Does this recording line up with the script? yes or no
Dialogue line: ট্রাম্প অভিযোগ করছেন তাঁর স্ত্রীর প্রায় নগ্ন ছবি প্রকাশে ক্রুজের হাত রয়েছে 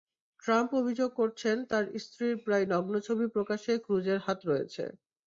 yes